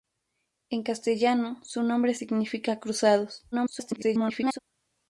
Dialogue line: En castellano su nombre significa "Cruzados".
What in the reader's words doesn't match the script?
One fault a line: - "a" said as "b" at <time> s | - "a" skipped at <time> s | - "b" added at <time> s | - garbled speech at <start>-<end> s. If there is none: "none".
- garbled speech at 3.5-4.6 s